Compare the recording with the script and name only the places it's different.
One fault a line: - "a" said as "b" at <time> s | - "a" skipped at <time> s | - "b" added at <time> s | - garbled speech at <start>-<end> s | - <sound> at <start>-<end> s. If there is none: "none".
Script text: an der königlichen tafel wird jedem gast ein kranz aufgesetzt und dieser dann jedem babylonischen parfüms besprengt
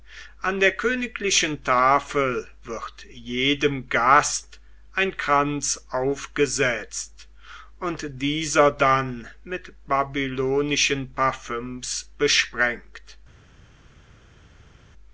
- "jedem" said as "mit" at 9.4 s